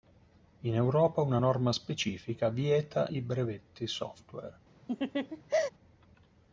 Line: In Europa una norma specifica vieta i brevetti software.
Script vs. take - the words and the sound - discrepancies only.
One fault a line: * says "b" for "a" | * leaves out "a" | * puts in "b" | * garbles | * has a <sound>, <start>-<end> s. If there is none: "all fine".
* has a laugh, 4.9-5.7 s